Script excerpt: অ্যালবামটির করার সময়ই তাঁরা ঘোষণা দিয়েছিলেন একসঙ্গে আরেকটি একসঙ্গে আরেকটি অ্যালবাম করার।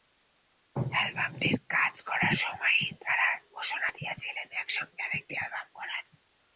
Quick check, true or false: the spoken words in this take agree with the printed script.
false